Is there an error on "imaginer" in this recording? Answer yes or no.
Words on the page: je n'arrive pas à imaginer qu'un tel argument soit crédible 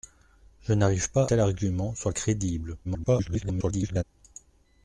yes